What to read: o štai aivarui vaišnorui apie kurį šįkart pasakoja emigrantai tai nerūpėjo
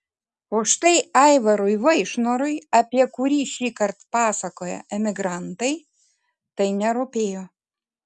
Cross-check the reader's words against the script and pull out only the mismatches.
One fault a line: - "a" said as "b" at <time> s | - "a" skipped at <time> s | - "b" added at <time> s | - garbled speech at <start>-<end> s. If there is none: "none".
none